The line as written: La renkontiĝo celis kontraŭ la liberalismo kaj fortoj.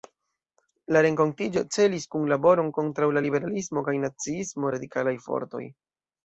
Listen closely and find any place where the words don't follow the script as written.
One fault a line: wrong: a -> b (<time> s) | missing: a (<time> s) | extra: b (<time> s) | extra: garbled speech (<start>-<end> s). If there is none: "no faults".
extra: kunlaboron (2.1 s)
extra: naciismo radikalaj (4.1 s)